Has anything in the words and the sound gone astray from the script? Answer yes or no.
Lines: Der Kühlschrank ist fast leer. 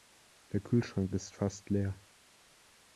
no